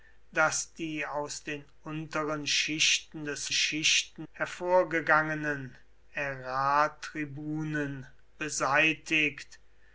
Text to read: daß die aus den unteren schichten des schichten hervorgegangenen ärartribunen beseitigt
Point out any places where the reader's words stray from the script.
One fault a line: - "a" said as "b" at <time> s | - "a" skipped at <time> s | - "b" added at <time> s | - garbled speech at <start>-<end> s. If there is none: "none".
none